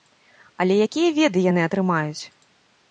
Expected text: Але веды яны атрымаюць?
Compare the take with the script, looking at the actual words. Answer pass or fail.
fail